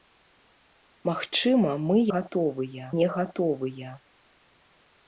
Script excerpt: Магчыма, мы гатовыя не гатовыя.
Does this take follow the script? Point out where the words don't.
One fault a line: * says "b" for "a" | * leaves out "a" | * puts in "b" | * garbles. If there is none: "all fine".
all fine